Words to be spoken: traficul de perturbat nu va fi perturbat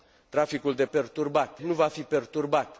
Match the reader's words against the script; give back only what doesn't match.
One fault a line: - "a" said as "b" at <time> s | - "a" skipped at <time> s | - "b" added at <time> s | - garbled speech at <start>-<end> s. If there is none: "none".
none